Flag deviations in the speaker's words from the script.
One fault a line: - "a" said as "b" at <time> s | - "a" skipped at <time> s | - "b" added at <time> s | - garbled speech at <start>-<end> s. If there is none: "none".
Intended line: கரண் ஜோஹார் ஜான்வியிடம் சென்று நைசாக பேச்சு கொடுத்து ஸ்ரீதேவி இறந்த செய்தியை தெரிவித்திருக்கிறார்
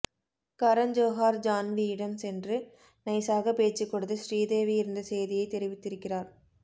none